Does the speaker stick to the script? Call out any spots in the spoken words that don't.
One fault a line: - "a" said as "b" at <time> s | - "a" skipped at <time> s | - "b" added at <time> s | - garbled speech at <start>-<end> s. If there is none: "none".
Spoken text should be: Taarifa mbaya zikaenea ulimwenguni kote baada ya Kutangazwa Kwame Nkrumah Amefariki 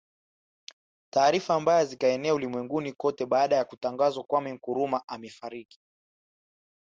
none